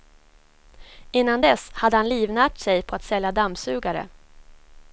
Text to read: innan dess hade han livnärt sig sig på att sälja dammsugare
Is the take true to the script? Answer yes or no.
no